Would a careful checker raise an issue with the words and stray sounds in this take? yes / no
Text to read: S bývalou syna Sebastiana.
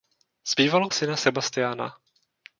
no